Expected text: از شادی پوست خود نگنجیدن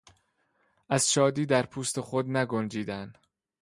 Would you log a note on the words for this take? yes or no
yes